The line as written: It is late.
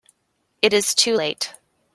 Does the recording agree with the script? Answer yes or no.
no